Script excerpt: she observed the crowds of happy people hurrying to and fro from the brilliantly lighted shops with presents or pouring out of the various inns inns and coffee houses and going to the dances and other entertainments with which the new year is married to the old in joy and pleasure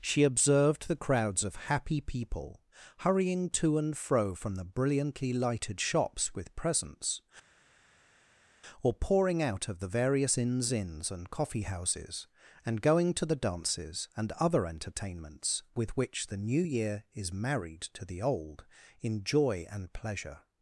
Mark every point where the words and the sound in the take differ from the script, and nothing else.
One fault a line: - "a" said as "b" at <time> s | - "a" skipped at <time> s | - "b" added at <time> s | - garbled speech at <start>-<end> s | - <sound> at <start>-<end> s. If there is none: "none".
none